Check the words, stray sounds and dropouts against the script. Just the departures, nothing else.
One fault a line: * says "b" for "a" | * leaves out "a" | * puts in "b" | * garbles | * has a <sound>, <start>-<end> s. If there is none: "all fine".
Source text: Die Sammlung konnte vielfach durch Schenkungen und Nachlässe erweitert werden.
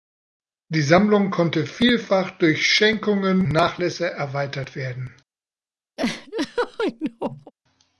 * leaves out "und"
* has a laugh, 6.0-7.5 s